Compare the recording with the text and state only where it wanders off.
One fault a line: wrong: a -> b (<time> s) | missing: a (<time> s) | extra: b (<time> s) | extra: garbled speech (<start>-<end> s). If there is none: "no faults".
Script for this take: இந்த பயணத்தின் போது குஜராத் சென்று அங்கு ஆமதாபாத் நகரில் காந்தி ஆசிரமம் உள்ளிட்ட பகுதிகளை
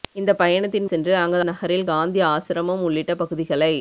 missing: போது குஜராத் (0.9 s)
missing: ஆமதாபாத் (1.4 s)